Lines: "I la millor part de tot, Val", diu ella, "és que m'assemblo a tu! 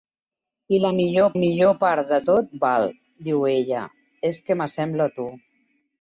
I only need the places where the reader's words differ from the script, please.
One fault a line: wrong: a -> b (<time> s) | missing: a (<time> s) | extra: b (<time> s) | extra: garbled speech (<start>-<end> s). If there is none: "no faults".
extra: millor (1.4 s)